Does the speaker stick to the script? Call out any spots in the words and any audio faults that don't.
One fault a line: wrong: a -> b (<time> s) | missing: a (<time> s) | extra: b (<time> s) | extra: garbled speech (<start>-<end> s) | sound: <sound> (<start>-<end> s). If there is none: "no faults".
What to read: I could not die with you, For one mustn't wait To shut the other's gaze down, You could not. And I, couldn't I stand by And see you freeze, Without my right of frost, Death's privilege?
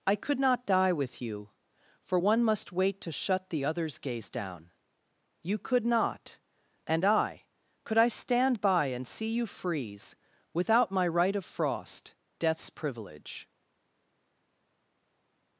wrong: mustn't -> must (2.4 s)
wrong: couldn't -> could (7.8 s)